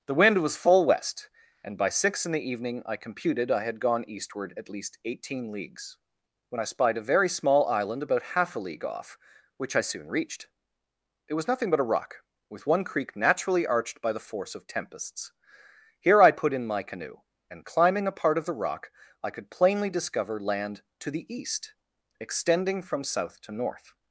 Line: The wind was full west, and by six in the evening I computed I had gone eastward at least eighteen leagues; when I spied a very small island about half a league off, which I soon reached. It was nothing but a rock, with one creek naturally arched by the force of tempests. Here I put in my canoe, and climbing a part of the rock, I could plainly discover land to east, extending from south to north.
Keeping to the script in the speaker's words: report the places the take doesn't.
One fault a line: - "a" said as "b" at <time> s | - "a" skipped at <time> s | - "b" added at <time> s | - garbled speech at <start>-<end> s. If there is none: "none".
- "the" added at 21.1 s